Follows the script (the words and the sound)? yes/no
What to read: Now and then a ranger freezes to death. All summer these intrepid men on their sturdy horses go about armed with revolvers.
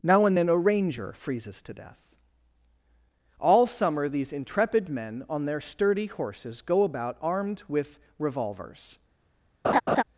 no